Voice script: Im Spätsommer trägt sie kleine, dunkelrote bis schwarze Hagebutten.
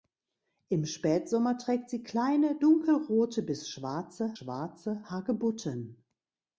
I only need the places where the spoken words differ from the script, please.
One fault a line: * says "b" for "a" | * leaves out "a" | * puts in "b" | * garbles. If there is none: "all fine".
* puts in "schwarze"